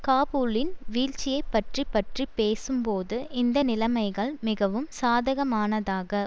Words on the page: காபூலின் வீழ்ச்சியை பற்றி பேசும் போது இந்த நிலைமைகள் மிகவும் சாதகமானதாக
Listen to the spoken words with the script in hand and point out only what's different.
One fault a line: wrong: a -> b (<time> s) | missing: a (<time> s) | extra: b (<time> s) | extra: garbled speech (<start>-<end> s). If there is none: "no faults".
extra: பற்றி (1.9 s)